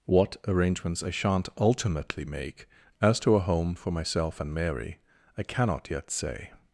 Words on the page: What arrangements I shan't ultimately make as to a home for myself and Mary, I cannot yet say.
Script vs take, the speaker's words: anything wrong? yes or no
no